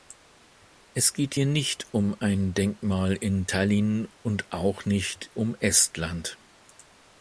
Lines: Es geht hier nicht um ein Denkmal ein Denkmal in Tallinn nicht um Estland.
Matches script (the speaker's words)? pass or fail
fail